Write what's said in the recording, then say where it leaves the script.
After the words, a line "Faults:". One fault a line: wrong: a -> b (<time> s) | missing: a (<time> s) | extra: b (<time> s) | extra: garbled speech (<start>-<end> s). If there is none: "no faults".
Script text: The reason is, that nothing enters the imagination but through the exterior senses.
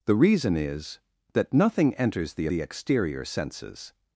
The reason is, that nothing enters the the exterior senses.
Faults:
missing: imagination but through (2.5 s)